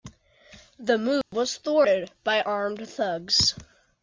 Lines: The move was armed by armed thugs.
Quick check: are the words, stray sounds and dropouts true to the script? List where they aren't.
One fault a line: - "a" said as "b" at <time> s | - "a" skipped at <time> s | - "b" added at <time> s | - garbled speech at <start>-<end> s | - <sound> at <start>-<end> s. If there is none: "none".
- dropout at 1.2-1.3 s
- "armed" said as "thwarted" at 1.6 s